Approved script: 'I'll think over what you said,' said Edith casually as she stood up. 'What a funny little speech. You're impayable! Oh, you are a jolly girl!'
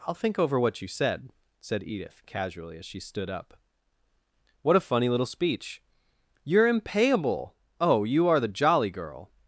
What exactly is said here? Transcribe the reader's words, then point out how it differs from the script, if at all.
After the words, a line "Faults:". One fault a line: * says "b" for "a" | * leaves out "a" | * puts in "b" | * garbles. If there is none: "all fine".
'I'll think over what you said,' said Edith casually as she stood up. 'What a funny little speech. You're impayable! Oh, you are the jolly girl!'
Faults:
* says "the" for "a"